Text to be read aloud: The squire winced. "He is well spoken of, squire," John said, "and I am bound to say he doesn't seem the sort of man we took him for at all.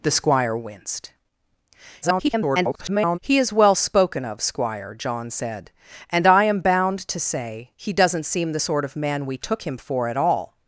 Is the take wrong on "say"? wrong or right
right